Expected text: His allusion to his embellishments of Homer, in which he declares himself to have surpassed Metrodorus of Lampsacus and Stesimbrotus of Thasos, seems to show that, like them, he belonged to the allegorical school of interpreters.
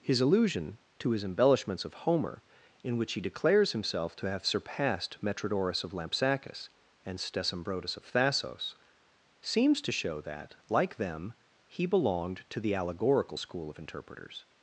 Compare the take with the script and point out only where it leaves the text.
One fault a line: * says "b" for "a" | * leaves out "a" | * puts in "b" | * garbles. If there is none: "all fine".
all fine